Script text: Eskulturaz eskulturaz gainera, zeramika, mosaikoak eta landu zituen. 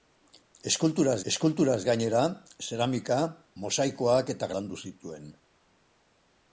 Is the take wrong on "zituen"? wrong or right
right